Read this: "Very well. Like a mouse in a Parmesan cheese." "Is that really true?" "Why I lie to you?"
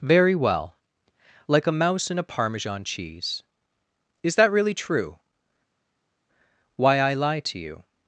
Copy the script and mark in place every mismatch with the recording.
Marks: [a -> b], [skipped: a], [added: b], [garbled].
"Very well. Like a mouse in a Parmesan cheese." "Is that really true?" "Why I lie to you?"